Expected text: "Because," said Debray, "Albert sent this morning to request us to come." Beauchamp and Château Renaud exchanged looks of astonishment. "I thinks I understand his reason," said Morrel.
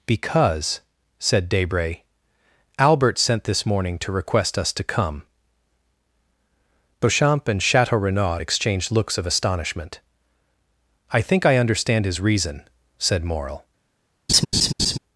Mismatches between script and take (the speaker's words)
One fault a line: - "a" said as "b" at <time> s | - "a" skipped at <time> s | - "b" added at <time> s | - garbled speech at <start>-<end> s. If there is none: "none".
- "thinks" said as "think" at 11.2 s